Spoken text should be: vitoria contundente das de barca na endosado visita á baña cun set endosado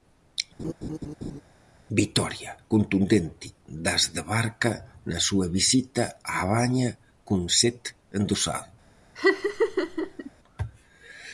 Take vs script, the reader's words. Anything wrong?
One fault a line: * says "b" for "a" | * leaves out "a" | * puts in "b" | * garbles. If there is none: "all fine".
* says "súa" for "endosado"